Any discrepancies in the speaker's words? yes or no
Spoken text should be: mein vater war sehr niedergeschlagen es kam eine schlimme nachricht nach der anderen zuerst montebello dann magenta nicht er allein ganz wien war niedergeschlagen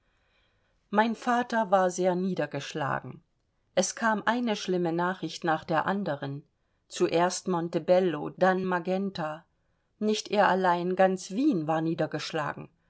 no